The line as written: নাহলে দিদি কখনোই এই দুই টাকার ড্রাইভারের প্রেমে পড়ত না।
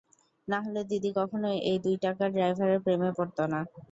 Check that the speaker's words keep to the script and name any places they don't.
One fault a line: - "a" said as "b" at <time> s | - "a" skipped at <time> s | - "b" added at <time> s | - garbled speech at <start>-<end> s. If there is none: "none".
none